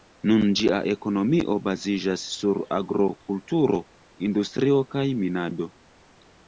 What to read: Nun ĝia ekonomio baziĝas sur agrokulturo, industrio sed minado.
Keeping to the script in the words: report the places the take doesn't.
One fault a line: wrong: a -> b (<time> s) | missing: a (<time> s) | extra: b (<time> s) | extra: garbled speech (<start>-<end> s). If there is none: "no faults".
wrong: sed -> kaj (5.0 s)